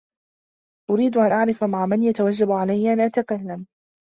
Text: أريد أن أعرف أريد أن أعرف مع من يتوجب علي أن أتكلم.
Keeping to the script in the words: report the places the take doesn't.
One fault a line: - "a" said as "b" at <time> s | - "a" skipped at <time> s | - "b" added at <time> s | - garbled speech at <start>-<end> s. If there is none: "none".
- "أريد أن أعرف" skipped at 1.6 s